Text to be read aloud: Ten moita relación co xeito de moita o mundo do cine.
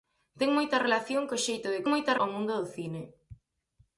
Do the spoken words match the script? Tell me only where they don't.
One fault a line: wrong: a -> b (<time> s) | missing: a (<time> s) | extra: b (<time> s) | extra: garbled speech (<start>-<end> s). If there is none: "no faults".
no faults